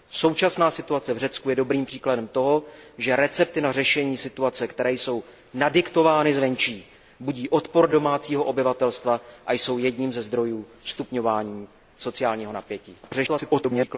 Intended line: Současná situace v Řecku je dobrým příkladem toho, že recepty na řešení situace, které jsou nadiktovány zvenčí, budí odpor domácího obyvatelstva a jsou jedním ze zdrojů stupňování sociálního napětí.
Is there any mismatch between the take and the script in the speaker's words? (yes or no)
yes